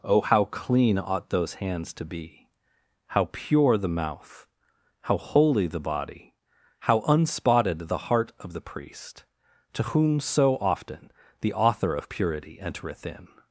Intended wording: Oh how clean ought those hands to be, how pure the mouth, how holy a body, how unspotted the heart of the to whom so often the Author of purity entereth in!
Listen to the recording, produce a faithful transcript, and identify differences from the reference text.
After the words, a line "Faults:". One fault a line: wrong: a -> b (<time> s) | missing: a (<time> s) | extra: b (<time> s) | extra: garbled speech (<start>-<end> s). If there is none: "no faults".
Oh how clean ought those hands to be, how pure the mouth, how holy the body, how unspotted the heart of the priest, to whom so often the Author of purity entereth in!
Faults:
wrong: a -> the (5.7 s)
extra: priest (8.6 s)